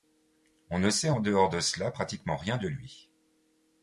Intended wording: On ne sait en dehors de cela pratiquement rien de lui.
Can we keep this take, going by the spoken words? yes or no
yes